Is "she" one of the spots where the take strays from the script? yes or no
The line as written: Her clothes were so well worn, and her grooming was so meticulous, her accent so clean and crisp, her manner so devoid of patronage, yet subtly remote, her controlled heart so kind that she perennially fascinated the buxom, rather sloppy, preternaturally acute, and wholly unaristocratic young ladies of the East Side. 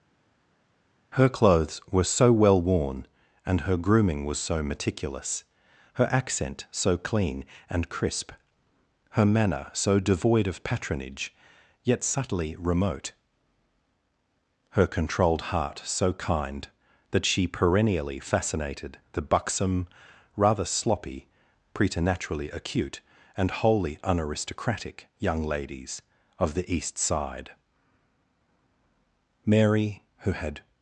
no